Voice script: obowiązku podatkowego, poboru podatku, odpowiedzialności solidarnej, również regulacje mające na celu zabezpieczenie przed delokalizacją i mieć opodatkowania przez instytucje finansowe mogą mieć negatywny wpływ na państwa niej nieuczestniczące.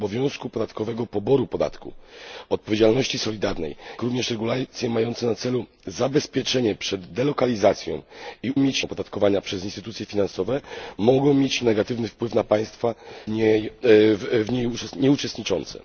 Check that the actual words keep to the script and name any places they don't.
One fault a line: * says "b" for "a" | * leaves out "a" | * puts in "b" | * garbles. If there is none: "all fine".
all fine